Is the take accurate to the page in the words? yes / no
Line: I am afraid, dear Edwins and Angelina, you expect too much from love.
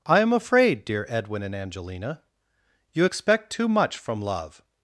no